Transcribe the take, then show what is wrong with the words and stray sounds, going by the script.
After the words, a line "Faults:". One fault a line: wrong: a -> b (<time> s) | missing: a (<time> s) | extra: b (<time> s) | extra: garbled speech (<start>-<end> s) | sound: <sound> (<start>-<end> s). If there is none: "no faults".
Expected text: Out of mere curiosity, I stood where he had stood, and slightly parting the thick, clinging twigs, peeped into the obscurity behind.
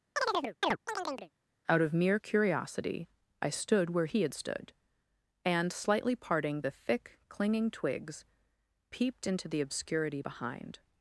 Out of mere curiosity, I stood where he had stood, and slightly parting the thick, clinging twigs, peeped into the obscurity behind.
Faults:
sound: chirp (0.2-1.3 s)